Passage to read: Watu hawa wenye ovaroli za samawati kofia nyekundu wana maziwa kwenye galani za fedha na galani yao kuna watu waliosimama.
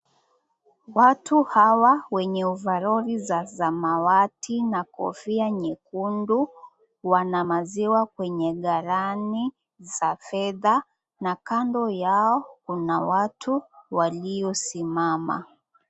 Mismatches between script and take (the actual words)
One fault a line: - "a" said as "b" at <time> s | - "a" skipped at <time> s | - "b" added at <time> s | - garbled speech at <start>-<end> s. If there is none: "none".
- "na" added at 4.6 s
- "galani" said as "kando" at 11.3 s